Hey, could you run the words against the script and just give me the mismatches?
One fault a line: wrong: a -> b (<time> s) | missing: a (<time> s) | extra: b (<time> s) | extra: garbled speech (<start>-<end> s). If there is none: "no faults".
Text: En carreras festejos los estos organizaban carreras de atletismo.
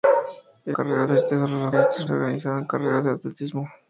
no faults